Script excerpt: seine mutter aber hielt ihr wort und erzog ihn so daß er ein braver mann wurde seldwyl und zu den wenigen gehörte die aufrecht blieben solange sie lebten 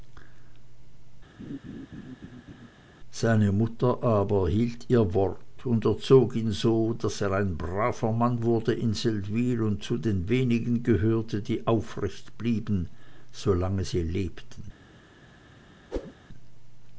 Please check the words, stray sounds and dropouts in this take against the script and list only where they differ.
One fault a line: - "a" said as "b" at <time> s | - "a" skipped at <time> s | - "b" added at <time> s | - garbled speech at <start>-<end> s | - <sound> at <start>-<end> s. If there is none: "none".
- laugh at 1.4-2.7 s
- "in" added at 8.7 s
- whoosh at 15.9-16.1 s